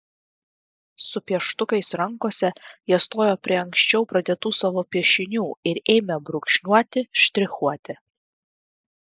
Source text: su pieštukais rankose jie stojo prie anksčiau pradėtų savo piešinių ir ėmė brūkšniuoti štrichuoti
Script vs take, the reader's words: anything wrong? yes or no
no